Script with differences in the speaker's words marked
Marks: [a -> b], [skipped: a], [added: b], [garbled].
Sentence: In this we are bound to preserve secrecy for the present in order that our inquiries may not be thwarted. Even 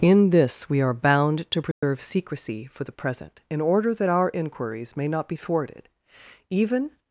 In this we are bound to preserve secrecy for the present in order that our inquiries may not be thwarted. Even